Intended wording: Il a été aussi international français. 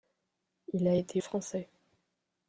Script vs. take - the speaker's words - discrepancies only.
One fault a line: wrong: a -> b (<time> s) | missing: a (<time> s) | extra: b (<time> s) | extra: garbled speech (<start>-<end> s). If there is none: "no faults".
missing: aussi international (1.2 s)